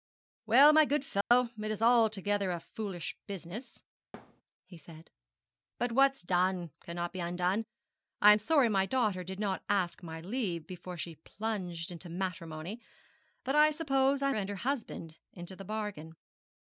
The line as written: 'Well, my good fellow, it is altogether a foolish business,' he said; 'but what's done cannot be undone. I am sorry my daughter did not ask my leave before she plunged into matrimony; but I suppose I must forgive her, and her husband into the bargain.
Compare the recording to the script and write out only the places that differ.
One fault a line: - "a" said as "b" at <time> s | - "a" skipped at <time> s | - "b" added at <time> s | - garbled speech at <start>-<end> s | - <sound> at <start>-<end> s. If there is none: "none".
- dropout at 1.2-1.3 s
- thud at 4.1-4.4 s
- "must forgive her" skipped at 14.3 s